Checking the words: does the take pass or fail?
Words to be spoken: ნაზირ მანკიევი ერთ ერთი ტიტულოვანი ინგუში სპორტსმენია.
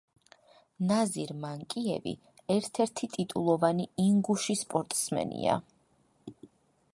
pass